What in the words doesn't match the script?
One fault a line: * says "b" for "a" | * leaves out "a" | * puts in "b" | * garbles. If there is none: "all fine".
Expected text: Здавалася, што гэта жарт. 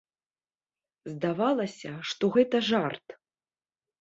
all fine